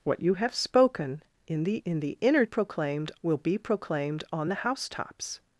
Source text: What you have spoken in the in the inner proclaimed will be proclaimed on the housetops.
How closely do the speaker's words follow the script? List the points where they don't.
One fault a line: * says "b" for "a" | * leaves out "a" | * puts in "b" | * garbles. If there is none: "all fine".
all fine